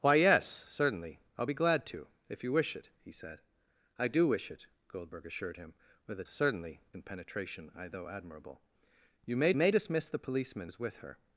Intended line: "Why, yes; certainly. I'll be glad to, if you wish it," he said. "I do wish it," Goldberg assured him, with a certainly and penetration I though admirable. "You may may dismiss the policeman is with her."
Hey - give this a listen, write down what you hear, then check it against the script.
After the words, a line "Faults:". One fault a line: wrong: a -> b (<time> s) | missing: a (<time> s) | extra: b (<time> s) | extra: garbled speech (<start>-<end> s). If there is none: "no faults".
"Why, yes; certainly. I'll be glad to, if you wish it," he said. "I do wish it," Goldberg assured him, with a certainly and penetration I though admirable. "You may may dismiss the policeman is with her."
Faults:
no faults